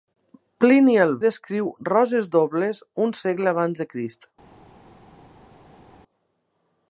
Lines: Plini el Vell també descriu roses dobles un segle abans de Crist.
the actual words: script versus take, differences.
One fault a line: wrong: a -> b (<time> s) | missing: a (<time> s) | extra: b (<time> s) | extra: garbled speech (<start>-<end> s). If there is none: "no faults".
missing: Vell també (1.1 s)